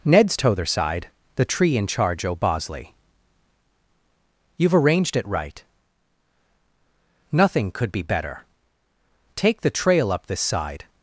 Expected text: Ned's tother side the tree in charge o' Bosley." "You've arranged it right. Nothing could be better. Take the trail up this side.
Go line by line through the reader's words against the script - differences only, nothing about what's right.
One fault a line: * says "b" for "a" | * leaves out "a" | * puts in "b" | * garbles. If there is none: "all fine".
all fine